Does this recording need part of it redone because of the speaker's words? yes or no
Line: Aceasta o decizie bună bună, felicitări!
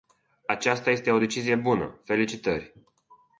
yes